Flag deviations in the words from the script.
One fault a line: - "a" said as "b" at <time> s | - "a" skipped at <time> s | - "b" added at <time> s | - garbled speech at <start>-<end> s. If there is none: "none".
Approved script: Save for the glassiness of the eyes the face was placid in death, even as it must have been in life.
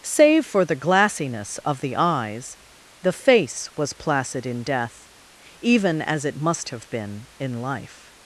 none